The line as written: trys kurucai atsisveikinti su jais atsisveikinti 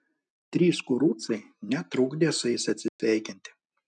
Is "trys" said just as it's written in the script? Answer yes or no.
yes